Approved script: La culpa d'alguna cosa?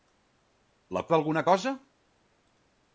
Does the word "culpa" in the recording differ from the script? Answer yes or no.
yes